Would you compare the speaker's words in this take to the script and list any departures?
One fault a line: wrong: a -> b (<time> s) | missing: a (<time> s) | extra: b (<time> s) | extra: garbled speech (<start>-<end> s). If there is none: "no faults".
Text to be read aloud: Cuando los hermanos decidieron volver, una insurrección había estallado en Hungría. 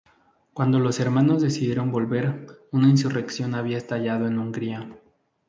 no faults